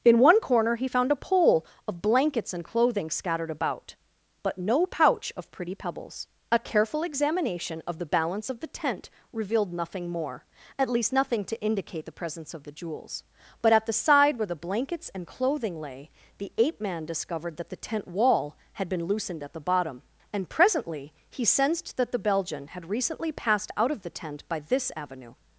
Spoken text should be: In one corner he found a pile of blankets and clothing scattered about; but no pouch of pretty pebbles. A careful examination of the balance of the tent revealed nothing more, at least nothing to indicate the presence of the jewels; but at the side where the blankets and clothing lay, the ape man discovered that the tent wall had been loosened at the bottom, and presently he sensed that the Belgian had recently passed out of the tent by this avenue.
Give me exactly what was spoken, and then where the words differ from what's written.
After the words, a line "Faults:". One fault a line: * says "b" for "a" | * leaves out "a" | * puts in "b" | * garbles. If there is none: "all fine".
In one corner he found a pole of blankets and clothing scattered about; but no pouch of pretty pebbles. A careful examination of the balance of the tent revealed nothing more, at least nothing to indicate the presence of the jewels; but at the side where the blankets and clothing lay, the ape man discovered that the tent wall had been loosened at the bottom, and presently he sensed that the Belgian had recently passed out of the tent by this avenue.
Faults:
* says "pole" for "pile"